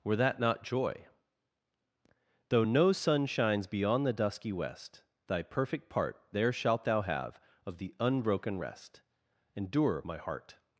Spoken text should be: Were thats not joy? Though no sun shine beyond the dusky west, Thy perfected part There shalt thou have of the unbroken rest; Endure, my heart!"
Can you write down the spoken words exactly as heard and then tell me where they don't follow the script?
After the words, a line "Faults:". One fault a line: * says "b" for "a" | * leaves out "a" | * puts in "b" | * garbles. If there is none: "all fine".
Were that not joy? Though no sun shines beyond the dusky west, Thy perfect part There shalt thou have of the unbroken rest; Endure, my heart!"
Faults:
* says "that" for "thats"
* says "shines" for "shine"
* says "perfect" for "perfected"